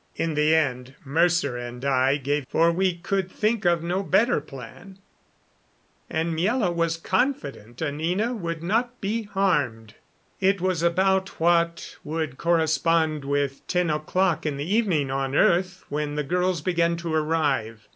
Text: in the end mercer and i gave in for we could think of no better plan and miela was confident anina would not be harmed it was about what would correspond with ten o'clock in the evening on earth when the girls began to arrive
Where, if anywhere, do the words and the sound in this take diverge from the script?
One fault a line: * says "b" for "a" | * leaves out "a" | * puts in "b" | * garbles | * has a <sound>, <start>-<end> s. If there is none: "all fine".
* leaves out "in"